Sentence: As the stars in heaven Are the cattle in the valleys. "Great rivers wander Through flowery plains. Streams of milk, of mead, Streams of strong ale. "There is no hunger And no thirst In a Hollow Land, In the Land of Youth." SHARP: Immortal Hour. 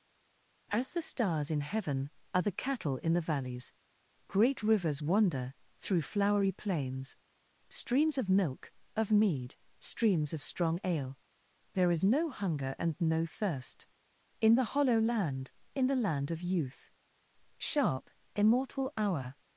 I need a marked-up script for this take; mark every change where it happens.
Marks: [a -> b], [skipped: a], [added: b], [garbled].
As the stars in heaven Are the cattle in the valleys. "Great rivers wander Through flowery plains. Streams of milk, of mead, Streams of strong ale. "There is no hunger And no thirst In [a -> the] Hollow Land, In the Land of Youth." SHARP: Immortal Hour.